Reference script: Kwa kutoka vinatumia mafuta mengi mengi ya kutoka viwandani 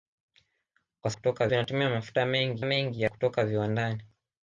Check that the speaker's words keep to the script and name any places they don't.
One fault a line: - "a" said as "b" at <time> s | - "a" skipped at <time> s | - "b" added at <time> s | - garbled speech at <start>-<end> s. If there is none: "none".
none